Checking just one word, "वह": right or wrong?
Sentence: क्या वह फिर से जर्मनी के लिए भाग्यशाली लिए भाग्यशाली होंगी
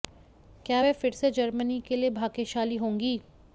right